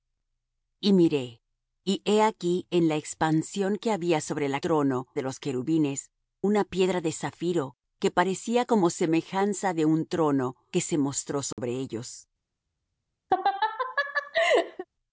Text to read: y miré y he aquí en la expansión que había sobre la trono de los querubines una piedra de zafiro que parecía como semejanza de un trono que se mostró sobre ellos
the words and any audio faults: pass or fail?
fail